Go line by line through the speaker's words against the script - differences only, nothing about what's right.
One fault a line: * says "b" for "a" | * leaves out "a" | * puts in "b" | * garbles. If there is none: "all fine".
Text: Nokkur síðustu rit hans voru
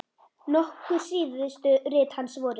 all fine